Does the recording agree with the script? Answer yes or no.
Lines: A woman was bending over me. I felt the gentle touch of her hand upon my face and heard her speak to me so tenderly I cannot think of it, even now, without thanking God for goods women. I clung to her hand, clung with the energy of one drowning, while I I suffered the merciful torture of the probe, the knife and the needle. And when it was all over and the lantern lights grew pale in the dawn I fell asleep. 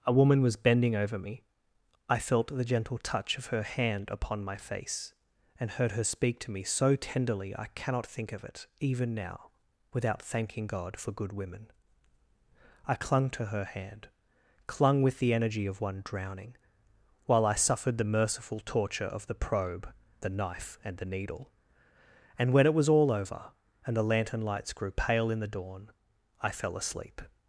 no